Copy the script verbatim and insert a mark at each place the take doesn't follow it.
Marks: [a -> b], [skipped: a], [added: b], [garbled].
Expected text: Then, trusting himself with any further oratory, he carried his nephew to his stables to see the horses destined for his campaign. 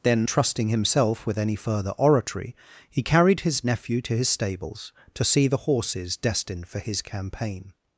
Then, trusting himself with any further oratory, he carried his nephew to his stables to see the horses destined for his campaign.